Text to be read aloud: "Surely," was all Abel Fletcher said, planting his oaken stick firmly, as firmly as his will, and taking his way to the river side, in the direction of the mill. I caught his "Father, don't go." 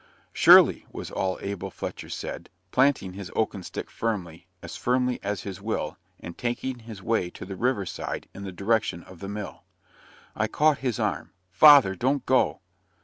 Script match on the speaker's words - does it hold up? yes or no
no